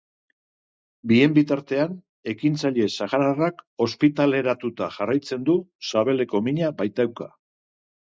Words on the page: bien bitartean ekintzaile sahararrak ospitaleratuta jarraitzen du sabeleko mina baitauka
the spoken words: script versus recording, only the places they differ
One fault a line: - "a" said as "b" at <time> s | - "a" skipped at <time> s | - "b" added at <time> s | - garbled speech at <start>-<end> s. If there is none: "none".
none